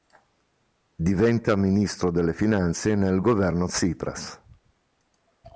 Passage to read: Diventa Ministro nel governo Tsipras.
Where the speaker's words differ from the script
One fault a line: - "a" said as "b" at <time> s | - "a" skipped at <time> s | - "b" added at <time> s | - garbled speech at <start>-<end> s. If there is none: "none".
- "delle finanze" added at 2.1 s